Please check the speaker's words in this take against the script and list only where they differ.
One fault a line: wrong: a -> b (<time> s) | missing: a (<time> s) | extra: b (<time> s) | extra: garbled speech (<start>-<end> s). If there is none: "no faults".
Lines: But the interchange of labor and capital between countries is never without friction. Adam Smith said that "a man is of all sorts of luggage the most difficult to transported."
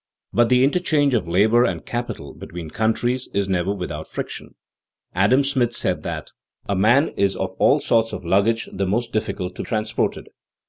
no faults